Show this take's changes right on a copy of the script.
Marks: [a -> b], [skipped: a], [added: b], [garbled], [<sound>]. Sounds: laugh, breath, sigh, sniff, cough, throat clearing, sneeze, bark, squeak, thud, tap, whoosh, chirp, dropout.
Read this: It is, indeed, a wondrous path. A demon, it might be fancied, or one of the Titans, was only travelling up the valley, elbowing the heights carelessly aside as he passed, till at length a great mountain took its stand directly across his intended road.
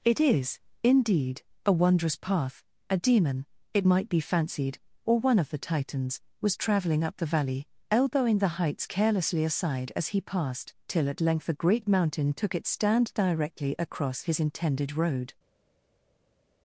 It is, indeed, a wondrous path. A demon, it might be fancied, or one of the Titans, was [skipped: only] travelling up the valley, elbowing the heights carelessly aside as he passed, till at length a great mountain took its stand directly across his intended road.